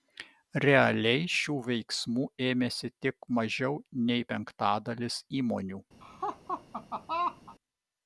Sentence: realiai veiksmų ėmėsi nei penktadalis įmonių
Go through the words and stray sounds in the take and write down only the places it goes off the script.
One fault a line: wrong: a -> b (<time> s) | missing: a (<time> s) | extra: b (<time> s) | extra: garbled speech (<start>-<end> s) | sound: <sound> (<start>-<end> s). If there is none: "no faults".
extra: šių (1.3 s)
extra: tik mažiau (3.1 s)
sound: laugh (6.0-7.6 s)